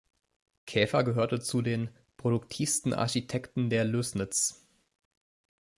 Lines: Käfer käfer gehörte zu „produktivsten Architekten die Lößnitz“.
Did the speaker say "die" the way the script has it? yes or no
no